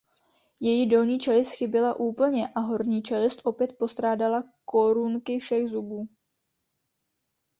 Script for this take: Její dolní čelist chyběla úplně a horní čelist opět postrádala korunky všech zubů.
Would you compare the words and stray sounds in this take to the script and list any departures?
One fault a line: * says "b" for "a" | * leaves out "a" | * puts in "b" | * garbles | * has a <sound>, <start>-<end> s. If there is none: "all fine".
all fine